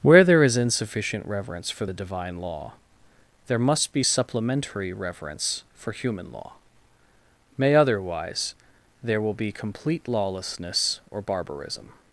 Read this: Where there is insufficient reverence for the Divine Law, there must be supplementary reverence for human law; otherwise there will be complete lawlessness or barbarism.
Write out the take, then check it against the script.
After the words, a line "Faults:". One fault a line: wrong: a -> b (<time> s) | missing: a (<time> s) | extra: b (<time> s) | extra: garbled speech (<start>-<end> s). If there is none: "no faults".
Where there is insufficient reverence for the Divine Law, there must be supplementary reverence for human law; may otherwise there will be complete lawlessness or barbarism.
Faults:
extra: may (7.6 s)